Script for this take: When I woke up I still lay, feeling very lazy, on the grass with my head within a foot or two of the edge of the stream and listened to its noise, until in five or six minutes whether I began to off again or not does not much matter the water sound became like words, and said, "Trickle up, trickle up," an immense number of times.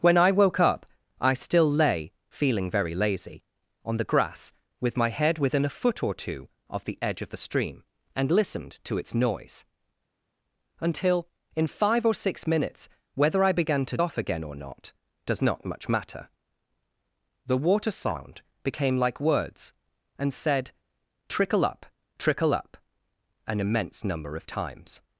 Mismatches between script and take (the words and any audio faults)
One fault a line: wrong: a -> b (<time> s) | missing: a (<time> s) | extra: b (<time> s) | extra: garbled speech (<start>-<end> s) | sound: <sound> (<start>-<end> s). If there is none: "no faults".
no faults